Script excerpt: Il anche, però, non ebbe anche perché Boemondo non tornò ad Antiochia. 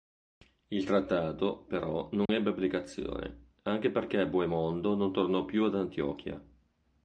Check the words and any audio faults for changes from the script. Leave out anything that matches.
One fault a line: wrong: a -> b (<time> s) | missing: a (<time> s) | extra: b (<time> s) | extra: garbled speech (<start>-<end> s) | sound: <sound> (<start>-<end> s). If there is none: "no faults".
wrong: anche -> trattato (0.8 s)
sound: dropout (2.3-2.3 s)
extra: applicazione (2.5 s)
extra: più (5.5 s)